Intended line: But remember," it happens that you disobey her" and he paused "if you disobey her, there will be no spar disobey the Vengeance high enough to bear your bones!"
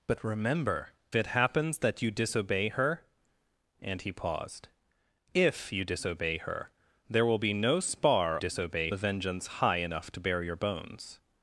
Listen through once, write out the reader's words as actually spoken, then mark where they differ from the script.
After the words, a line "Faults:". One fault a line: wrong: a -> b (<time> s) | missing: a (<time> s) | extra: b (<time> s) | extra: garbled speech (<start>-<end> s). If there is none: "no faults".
But remember," it happens that you disobey her" and he paused "if you disobey her, there will be no spar disobey the Vengeance high enough to bear your bones!"
Faults:
no faults